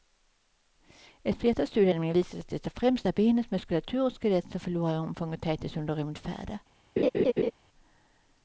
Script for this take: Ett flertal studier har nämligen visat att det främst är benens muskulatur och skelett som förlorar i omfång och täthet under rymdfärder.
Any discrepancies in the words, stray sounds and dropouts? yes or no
yes